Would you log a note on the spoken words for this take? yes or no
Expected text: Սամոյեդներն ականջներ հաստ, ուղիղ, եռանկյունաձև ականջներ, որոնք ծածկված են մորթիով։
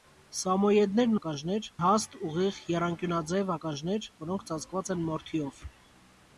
no